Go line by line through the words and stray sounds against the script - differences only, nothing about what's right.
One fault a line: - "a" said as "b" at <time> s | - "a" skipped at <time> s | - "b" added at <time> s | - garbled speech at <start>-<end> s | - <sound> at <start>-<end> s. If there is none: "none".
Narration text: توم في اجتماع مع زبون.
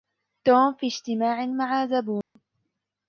- dropout at 2.2-2.4 s